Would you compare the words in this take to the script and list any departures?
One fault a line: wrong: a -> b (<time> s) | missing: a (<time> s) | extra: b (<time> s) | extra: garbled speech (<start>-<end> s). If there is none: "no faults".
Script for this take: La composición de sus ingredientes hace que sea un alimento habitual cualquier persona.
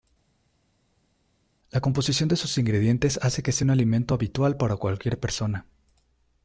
extra: para (4.6 s)